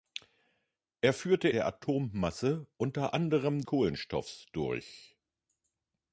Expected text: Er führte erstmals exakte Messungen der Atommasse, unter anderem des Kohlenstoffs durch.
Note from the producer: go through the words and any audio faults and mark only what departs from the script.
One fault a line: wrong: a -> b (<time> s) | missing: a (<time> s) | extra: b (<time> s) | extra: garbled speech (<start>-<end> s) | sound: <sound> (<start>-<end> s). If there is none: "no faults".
missing: erstmals exakte Messungen (1.5 s)
missing: des (3.6 s)